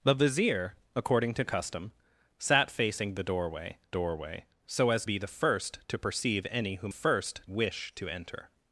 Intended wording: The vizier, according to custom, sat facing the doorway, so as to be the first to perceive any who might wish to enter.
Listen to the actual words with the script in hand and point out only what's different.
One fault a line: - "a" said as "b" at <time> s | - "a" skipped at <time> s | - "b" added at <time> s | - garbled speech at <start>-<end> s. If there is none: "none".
- "doorway" added at 3.9 s
- "to" skipped at 5.0 s
- "might" said as "first" at 6.9 s